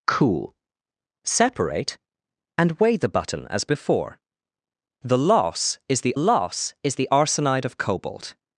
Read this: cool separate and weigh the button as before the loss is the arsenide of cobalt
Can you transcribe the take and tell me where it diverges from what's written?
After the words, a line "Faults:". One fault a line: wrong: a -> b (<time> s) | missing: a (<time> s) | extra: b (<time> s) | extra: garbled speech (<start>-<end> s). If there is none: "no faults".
cool separate and weigh the button as before the loss is the loss is the arsenide of cobalt
Faults:
extra: loss is the (6.2 s)